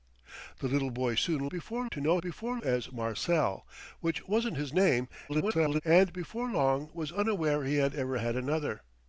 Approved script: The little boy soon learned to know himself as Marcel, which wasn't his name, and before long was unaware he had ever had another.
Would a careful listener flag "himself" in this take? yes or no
yes